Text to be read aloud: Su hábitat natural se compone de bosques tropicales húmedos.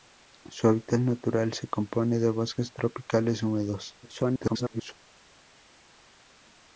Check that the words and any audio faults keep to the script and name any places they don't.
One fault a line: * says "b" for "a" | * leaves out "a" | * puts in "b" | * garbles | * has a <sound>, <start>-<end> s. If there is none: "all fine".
* garbles